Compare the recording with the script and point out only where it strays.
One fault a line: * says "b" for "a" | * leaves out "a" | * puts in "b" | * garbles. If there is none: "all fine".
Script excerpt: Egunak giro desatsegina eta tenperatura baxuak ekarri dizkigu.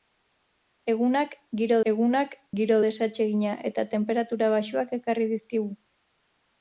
* puts in "egunak giro"